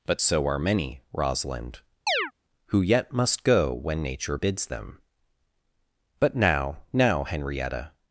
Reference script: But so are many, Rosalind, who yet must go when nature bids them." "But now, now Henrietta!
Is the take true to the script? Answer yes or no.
yes